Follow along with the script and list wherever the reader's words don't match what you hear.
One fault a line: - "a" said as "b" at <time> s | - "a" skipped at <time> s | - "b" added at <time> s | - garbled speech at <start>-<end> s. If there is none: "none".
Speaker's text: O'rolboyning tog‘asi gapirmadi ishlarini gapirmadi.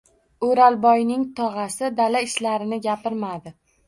- "gapirmadi" said as "dala" at 2.0 s